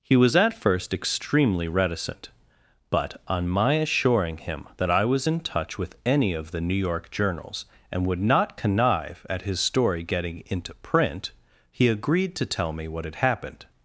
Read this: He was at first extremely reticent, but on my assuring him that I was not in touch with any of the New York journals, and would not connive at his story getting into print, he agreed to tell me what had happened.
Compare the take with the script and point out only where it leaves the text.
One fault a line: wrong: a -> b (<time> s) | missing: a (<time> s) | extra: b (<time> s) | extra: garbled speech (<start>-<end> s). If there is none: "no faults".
missing: not (5.3 s)